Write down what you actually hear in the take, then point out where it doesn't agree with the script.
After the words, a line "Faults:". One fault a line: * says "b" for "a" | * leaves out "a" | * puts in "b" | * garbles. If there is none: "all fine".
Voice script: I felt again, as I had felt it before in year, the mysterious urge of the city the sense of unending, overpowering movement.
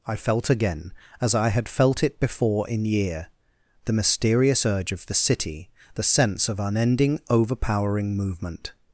I felt again, as I had felt it before in year, the mysterious urge of the city the sense of unending, overpowering movement.
Faults:
all fine